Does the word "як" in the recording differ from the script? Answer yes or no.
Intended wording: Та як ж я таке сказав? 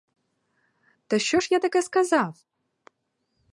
yes